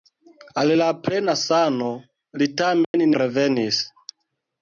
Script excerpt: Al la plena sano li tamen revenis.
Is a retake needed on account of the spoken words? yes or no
no